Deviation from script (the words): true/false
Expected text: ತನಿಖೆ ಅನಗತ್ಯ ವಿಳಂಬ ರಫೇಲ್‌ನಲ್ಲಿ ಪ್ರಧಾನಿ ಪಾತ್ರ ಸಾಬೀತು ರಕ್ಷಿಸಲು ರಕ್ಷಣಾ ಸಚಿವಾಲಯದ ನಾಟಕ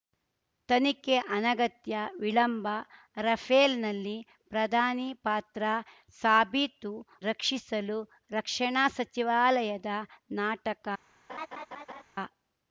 false